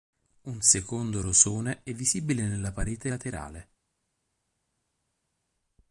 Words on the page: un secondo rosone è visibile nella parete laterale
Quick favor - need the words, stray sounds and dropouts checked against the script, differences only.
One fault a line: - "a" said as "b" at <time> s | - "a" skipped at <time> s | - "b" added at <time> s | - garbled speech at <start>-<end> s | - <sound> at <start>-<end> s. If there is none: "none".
none